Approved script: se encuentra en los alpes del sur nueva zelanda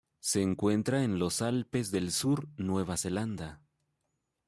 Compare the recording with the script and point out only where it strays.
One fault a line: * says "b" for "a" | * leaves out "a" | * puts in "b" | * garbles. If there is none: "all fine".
all fine